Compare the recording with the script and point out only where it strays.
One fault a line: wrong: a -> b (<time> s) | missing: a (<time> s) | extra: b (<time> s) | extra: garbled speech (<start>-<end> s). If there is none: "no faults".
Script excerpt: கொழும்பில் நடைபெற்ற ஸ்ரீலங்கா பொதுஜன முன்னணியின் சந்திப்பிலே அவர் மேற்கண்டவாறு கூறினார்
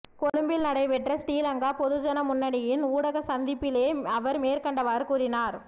extra: ஊடக (2.9 s)